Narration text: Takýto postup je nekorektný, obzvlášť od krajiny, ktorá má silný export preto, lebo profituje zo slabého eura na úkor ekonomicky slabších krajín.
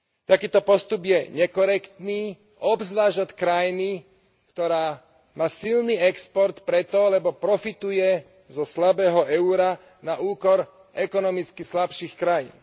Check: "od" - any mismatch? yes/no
no